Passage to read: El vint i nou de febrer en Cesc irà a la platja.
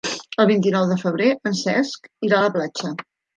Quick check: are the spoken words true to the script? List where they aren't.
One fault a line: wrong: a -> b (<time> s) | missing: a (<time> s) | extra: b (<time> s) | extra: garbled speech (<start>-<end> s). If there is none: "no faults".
no faults